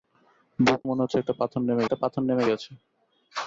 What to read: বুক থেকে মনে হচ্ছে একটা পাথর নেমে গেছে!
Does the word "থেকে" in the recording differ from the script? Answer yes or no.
yes